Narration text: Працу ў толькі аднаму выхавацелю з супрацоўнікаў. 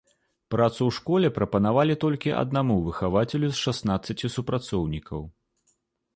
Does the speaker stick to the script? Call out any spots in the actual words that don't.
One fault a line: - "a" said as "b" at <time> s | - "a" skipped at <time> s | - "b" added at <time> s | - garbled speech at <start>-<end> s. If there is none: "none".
- "школе прапанавалі" added at 1.0 s
- "шаснаццаці" added at 3.7 s